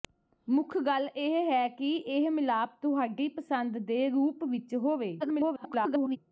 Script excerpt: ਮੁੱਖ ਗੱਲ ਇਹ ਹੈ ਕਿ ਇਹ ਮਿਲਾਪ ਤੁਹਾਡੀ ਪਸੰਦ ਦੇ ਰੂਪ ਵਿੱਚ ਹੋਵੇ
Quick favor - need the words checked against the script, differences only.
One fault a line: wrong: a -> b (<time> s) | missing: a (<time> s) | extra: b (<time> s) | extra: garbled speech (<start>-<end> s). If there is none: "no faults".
extra: garbled speech (5.2-6.2 s)